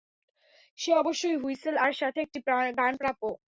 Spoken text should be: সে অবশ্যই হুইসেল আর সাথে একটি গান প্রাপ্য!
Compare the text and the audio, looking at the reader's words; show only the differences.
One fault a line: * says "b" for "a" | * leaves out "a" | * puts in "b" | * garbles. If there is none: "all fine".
all fine